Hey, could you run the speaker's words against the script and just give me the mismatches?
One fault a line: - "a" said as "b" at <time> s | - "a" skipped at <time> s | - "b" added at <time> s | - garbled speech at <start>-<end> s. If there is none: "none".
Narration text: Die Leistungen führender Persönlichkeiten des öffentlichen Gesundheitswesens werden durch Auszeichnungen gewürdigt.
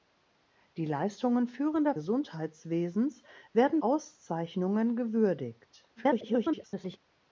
- "Persönlichkeiten des öffentlichen" skipped at 1.9 s
- "durch" skipped at 3.8 s
- garbled speech at 6.0-7.0 s